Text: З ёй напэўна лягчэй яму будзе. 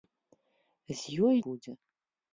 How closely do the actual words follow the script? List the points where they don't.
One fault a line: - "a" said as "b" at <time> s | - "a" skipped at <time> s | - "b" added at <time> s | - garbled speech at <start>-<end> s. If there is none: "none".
- "напэўна лягчэй яму" skipped at 1.4 s